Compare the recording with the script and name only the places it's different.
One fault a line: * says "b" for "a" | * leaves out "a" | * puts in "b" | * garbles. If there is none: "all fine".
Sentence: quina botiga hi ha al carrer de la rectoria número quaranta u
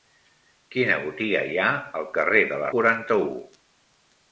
* leaves out "rectoria número"